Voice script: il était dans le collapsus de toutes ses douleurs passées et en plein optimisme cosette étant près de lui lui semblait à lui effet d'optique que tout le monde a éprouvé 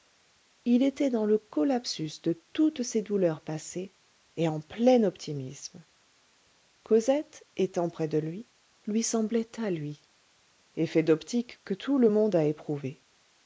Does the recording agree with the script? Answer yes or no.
yes